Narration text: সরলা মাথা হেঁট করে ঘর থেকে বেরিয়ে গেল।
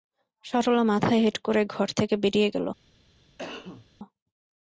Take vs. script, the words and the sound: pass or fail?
fail